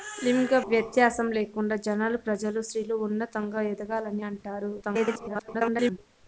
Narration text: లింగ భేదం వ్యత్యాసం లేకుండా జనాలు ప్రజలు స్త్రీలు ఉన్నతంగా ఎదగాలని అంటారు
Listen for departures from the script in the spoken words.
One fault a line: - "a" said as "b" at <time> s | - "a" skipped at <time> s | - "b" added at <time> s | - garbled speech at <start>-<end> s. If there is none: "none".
- "భేదం" skipped at 0.6 s
- garbled speech at 4.8-6.0 s